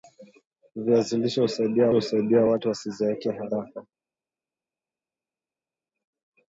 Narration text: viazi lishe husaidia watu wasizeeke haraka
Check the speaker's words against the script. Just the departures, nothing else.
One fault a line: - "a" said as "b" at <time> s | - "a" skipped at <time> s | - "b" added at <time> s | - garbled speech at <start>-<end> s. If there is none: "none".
- "husaidia" added at 1.9 s